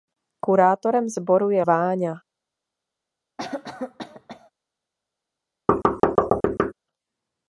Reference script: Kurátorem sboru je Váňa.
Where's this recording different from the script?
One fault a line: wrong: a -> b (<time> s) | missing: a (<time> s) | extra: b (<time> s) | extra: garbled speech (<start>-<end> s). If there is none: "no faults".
no faults